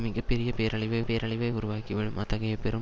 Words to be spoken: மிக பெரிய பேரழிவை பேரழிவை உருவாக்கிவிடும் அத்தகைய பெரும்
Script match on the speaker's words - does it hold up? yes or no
yes